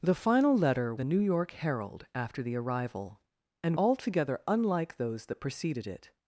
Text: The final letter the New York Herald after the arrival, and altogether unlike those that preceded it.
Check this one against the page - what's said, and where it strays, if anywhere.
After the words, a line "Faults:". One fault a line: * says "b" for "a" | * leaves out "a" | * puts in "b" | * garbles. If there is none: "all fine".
The final letter the New York Herald after the arrival, and altogether unlike those that preceded it.
Faults:
all fine